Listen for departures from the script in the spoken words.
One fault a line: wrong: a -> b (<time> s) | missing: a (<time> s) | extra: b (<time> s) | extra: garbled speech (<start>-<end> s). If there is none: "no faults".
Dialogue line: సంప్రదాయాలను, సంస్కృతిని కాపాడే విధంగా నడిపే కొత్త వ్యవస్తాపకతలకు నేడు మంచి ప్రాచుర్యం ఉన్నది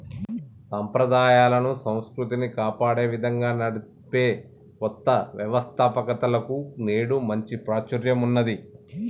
no faults